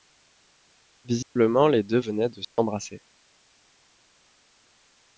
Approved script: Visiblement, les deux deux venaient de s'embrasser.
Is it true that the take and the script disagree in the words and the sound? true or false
true